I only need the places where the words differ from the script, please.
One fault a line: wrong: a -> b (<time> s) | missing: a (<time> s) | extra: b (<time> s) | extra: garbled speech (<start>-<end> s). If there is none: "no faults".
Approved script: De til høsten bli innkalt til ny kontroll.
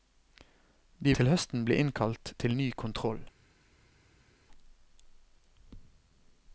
no faults